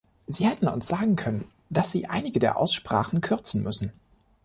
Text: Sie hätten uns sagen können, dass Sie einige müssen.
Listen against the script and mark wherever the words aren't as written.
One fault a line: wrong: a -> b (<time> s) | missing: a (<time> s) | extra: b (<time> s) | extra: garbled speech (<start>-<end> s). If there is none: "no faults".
extra: der Aussprachen kürzen (2.4 s)